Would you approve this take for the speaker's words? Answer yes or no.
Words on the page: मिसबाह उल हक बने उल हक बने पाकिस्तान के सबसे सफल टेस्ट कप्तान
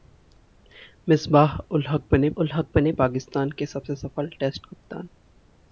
yes